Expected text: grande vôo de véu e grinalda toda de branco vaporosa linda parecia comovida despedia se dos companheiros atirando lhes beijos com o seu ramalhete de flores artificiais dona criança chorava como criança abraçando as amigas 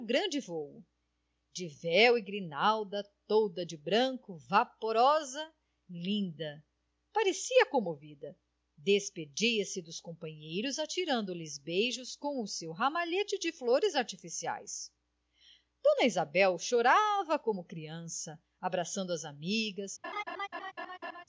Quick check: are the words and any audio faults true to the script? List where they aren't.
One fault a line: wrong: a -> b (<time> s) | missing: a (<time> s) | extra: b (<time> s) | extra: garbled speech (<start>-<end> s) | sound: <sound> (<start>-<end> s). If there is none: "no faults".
wrong: criança -> isabel (16.1 s)
sound: laugh (20.0-21.2 s)